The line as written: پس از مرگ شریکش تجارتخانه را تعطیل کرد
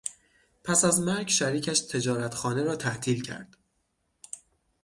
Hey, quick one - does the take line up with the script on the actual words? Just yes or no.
yes